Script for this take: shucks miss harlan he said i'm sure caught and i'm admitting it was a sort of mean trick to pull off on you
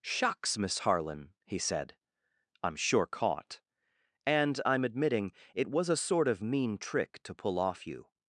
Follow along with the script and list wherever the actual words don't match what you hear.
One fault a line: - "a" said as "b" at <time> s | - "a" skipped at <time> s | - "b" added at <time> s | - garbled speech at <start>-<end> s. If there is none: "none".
- "on" skipped at 7.9 s